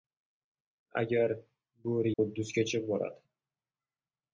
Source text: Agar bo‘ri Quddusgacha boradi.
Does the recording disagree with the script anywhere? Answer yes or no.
no